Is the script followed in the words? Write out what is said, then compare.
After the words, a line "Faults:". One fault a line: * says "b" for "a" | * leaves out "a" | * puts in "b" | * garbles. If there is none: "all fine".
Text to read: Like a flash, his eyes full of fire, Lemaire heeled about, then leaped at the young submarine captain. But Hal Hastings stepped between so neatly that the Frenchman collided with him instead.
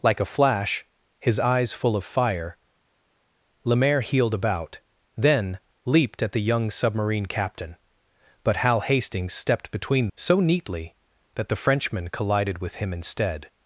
Like a flash, his eyes full of fire, Lemaire heeled about, then leaped at the young submarine captain. But Hal Hastings stepped between so neatly that the Frenchman collided with him instead.
Faults:
all fine